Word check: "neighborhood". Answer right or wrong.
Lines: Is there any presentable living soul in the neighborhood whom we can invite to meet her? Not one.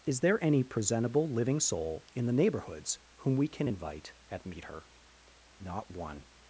wrong